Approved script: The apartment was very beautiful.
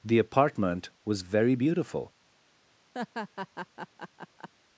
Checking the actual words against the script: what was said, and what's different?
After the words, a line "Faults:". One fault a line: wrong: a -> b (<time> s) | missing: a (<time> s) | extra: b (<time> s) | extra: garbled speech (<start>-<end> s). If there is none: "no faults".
The apartment was very beautiful.
Faults:
no faults